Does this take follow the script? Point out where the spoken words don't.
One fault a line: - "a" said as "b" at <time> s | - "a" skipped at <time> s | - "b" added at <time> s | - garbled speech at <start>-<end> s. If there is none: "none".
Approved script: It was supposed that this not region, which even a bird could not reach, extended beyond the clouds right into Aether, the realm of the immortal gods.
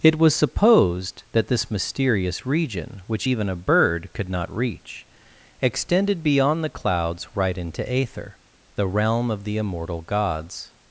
- "not" said as "mysterious" at 1.7 s